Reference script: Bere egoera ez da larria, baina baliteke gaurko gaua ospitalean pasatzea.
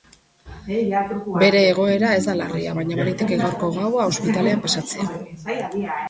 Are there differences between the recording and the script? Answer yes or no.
no